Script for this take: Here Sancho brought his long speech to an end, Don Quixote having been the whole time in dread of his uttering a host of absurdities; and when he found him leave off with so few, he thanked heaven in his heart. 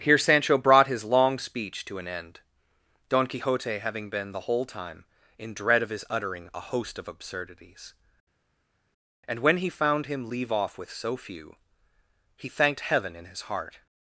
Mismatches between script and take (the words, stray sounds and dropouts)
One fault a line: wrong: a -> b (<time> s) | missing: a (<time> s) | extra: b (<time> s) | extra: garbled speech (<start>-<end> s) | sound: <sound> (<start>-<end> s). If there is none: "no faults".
no faults